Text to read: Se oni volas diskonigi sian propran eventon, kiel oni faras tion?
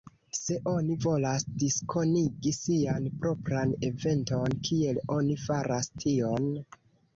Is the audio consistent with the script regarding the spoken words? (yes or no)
yes